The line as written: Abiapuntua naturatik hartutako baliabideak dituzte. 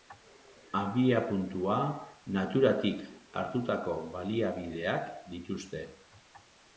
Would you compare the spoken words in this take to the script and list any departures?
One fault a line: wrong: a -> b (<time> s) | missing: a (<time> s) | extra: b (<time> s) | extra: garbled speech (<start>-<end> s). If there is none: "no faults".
no faults